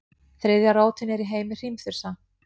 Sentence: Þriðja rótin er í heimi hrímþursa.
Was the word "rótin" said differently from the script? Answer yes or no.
no